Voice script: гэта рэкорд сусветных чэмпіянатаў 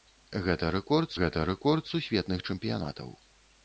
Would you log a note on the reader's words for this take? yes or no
yes